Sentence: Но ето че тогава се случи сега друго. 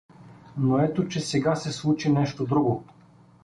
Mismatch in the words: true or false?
true